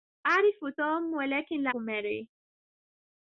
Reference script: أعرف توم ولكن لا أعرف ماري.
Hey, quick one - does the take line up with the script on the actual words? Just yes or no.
no